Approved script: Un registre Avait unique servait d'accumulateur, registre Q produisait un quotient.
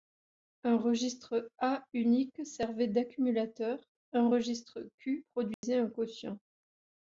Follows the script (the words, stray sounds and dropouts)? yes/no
no